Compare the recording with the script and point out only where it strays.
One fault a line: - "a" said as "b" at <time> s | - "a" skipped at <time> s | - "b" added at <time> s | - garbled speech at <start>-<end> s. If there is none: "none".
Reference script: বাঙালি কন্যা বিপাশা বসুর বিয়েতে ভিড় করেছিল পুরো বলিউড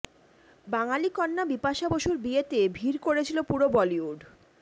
none